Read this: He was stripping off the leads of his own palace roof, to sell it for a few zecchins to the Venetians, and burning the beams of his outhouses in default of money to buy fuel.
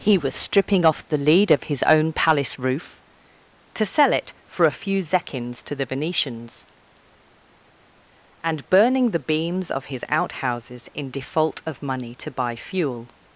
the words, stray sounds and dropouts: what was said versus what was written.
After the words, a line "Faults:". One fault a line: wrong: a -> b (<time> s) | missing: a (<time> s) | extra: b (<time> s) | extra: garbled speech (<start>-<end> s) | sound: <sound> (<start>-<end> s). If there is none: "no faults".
He was stripping off the lead of his own palace roof, to sell it for a few zecchins to the Venetians, and burning the beams of his outhouses in default of money to buy fuel.
Faults:
wrong: leads -> lead (1.2 s)